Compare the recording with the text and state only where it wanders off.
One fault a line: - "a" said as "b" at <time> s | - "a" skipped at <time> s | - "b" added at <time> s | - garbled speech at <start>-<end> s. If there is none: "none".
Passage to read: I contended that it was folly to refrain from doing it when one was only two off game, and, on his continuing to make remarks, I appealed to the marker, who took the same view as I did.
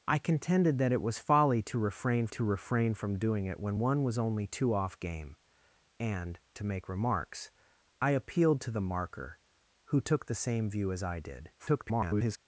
- "to refrain" added at 2.3 s
- "on his continuing" skipped at 6.4 s
- garbled speech at 11.6-12.4 s